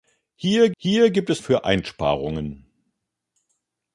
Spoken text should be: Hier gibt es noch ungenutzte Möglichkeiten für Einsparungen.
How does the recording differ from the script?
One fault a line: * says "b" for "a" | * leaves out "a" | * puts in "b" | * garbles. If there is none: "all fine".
* puts in "hier"
* leaves out "noch ungenutzte Möglichkeiten"